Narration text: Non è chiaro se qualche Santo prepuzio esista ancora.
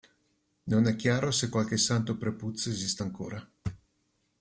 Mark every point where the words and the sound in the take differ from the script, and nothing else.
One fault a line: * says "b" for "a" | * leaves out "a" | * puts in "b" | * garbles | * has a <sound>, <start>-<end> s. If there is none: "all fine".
all fine